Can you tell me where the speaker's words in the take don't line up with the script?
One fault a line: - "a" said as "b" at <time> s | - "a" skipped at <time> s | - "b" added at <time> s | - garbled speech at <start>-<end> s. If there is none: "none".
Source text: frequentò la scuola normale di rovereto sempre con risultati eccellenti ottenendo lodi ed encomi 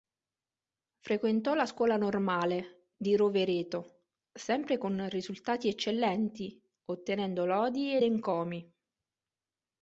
none